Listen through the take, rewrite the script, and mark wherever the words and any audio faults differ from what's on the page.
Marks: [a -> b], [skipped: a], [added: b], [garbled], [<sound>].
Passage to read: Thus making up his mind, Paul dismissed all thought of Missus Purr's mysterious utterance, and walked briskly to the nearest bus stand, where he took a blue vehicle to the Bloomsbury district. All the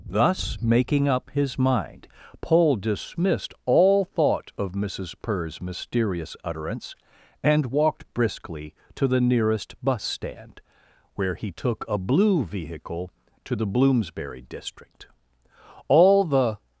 Thus making up his mind, Paul dismissed all thought of Missus Purr's mysterious utterance, and walked briskly to the nearest bus stand, where he took a blue vehicle to the Bloomsbury district. All the